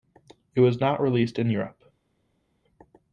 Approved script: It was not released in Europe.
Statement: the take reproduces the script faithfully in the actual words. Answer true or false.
true